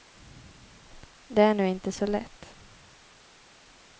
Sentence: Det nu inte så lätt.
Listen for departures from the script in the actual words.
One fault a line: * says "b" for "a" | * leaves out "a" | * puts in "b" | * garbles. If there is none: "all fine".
* puts in "är"